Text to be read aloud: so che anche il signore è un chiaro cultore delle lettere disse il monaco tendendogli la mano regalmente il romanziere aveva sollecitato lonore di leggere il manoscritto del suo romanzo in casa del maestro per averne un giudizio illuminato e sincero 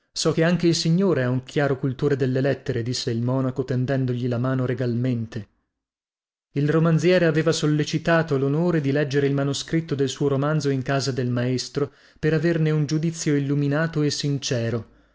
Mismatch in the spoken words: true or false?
false